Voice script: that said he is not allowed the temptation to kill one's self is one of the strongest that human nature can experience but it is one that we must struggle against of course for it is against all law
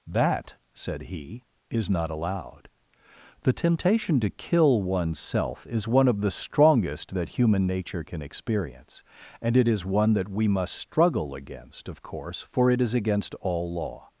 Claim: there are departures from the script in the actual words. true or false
true